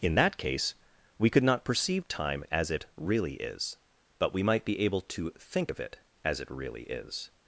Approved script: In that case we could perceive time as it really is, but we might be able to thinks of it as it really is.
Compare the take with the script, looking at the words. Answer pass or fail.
fail